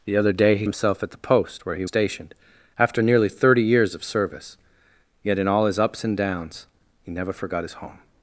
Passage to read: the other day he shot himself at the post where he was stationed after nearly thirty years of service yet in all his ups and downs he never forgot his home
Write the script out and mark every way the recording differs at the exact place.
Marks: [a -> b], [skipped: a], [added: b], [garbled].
the other day he [skipped: shot] himself at the post where he [skipped: was] stationed after nearly thirty years of service yet in all his ups and downs he never forgot his home